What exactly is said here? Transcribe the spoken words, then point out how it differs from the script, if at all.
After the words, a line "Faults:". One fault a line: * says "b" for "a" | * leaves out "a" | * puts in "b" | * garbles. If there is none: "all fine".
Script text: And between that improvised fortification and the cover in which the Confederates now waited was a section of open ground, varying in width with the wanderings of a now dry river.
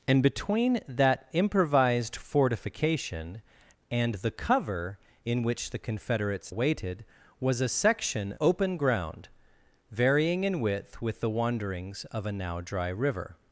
And between that improvised fortification and the cover in which the Confederates waited was a section open ground, varying in width with the wanderings of a now dry river.
Faults:
* leaves out "now"
* leaves out "of"